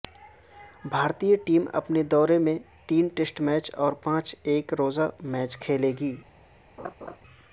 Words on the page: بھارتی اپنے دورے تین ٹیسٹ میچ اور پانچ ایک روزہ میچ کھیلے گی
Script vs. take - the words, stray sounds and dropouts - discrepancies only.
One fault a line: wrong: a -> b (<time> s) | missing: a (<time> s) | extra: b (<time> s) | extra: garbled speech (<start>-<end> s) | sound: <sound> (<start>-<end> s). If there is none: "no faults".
extra: ٹیم (1.4 s)
extra: میں (2.5 s)
sound: laugh (6.8-7.2 s)